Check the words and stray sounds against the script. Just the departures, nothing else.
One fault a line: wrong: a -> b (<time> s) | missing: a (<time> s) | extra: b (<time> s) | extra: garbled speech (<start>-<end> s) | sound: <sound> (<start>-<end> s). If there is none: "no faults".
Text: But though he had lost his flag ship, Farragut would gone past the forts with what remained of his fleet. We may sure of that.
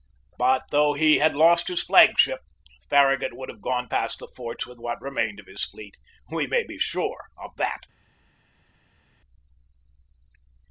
extra: have (3.5 s)
extra: be (6.6 s)